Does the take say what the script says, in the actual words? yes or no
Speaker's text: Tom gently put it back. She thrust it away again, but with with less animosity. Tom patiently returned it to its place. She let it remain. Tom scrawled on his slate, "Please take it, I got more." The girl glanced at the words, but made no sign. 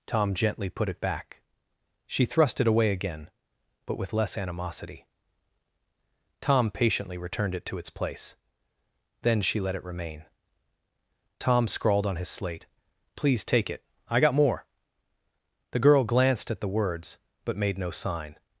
no